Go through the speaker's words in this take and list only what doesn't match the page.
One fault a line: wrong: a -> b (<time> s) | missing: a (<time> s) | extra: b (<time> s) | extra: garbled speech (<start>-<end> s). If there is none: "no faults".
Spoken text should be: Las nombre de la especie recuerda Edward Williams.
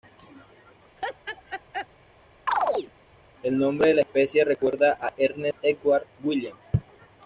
wrong: Las -> El (3.4 s)
extra: a Ernest (5.0 s)